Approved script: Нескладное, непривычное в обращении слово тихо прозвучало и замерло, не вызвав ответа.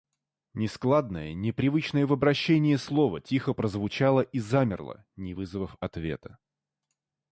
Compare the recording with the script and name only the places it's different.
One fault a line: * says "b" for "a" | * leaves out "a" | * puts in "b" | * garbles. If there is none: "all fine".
all fine